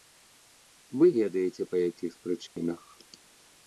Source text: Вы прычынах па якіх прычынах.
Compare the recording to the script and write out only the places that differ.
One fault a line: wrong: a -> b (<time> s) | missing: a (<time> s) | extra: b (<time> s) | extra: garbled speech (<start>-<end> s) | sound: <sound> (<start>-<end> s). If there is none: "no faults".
wrong: прычынах -> ведаеце (1.2 s)
sound: dropout (2.5-2.6 s)